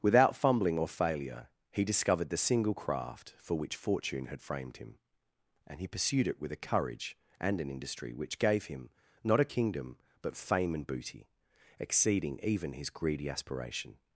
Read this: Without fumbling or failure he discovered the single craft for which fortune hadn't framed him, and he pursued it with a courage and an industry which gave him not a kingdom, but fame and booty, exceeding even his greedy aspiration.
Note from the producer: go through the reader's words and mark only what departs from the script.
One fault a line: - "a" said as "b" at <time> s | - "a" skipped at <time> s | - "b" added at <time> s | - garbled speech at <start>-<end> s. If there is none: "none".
- "hadn't" said as "had" at 4.2 s